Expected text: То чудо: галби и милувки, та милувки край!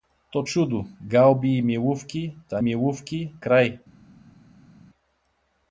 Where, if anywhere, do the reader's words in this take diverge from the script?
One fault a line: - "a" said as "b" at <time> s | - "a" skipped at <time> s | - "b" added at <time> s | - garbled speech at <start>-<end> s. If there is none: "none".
none